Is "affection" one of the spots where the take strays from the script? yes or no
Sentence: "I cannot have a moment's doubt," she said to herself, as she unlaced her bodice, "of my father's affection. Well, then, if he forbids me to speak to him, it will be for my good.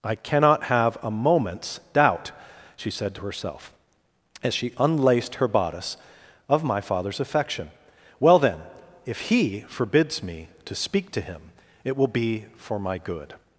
no